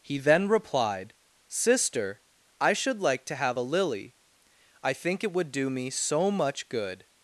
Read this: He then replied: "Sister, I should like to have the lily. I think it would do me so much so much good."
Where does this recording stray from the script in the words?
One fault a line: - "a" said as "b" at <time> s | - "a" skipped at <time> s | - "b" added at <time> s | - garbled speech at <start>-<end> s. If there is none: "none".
- "the" said as "a" at 3.6 s
- "so much" skipped at 6.7 s